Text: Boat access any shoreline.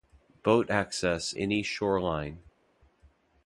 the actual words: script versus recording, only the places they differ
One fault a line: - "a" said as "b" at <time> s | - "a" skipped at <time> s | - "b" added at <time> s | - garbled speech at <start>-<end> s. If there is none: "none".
none